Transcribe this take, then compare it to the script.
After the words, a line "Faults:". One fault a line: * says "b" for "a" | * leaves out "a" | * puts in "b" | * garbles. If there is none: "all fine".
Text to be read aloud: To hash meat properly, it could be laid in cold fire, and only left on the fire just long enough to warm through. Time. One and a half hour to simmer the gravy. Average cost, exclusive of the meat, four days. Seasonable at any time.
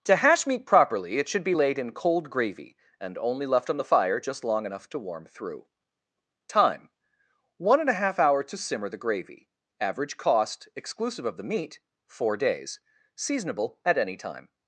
To hash meat properly, it should be laid in cold gravy, and only left on the fire just long enough to warm through. Time. One and a half hour to simmer the gravy. Average cost, exclusive of the meat, four days. Seasonable at any time.
Faults:
* says "should" for "could"
* says "gravy" for "fire"